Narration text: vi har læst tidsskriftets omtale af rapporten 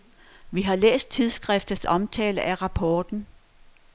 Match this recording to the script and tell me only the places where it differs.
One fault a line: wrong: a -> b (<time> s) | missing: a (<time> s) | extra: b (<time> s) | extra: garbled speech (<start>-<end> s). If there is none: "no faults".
no faults